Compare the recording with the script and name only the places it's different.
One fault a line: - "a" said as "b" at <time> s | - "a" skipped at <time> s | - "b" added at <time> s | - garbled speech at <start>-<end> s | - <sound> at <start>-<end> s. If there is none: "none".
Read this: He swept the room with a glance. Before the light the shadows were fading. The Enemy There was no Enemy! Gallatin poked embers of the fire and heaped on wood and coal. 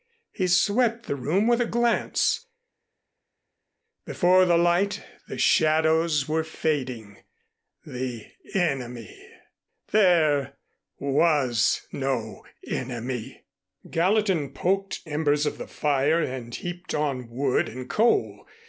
none